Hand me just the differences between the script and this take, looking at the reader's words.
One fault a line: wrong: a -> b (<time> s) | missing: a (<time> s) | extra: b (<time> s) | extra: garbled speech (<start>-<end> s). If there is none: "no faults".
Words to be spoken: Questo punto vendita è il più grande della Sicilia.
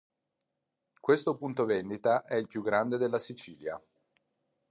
no faults